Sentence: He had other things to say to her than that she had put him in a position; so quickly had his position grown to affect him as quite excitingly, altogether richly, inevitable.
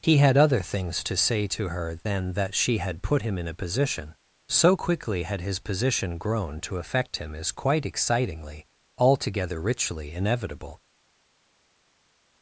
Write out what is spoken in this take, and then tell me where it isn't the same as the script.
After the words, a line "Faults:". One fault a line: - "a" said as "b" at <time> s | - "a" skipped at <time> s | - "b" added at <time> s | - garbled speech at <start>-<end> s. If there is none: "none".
He had other things to say to her than that she had put him in a position; so quickly had his position grown to affect him as quite excitingly, altogether richly, inevitable.
Faults:
none